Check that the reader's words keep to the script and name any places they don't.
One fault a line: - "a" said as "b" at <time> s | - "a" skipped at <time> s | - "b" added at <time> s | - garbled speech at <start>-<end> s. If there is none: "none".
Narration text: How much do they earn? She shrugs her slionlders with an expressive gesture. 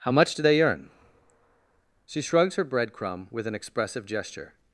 - "slionlders" said as "breadcrumb" at 2.6 s